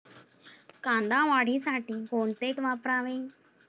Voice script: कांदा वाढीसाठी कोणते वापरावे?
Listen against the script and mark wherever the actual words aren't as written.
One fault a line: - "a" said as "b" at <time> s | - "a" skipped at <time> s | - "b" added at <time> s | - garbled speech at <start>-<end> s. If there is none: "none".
none